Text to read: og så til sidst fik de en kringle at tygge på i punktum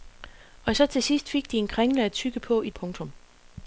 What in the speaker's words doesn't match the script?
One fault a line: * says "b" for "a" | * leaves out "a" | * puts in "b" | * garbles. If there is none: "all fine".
all fine